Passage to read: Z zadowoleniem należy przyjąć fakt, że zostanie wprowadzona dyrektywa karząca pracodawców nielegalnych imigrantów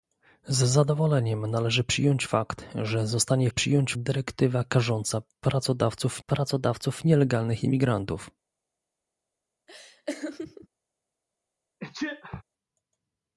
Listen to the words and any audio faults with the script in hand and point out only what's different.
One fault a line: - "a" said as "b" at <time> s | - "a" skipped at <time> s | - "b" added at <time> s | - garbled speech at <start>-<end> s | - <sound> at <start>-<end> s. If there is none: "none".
- "wprowadzona" said as "przyjąć" at 3.5 s
- "pracodawców" added at 6.3 s
- laugh at 9.7-10.7 s
- sneeze at 11.8-12.4 s